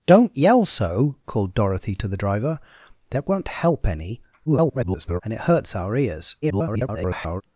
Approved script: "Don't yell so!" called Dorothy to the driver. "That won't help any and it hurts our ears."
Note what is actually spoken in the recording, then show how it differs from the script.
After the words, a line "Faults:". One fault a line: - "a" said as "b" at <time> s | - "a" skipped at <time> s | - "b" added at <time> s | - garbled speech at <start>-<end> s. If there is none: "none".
"Don't yell so!" called Dorothy to the driver. "That won't help any [garbled] and it hurts our ears." [garbled]
Faults:
- garbled speech at 4.5-5.2 s
- garbled speech at 6.4-7.4 s